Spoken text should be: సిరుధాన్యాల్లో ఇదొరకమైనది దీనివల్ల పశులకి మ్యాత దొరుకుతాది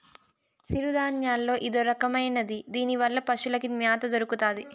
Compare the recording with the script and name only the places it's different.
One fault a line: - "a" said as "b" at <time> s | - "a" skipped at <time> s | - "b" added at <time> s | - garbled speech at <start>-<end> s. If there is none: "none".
none